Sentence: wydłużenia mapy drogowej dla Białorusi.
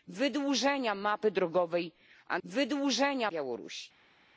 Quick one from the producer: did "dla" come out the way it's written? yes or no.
no